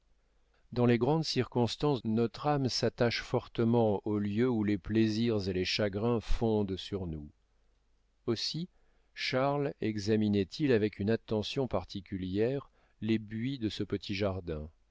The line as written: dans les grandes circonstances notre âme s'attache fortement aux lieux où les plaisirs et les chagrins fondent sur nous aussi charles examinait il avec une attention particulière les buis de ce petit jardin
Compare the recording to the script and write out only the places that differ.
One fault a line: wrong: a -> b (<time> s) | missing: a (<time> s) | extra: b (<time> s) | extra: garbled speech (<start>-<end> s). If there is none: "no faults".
no faults